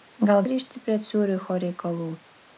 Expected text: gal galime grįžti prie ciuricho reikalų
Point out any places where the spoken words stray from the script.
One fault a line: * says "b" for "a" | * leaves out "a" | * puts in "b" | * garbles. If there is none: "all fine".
* leaves out "galime"